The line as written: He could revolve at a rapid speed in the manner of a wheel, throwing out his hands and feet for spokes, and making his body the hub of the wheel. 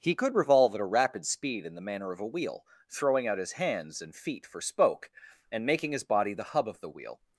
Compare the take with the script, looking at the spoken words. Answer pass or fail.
fail